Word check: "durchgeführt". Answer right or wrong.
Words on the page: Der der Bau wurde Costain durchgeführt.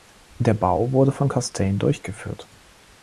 right